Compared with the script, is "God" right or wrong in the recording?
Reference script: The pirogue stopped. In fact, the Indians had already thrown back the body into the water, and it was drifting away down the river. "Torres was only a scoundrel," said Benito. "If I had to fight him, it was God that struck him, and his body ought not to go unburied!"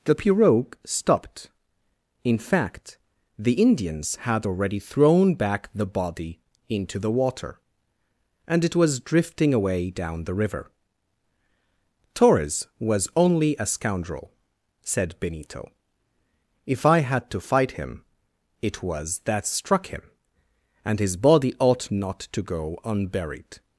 wrong